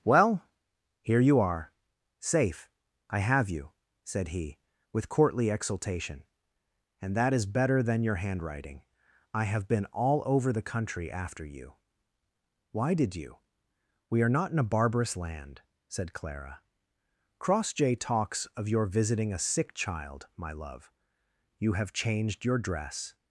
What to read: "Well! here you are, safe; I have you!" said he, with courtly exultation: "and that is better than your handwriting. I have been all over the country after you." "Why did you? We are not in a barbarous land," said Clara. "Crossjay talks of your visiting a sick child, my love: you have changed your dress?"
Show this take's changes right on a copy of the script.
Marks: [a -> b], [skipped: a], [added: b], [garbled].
"Well! here you are, safe; I have you!" said he, with courtly exultation: "and that is better than your handwriting. I have been all over the country after you." "Why did you? We are not in a barbarous land," said Clara. "Crossjay talks of your visiting a sick child, my love: you have changed your dress?"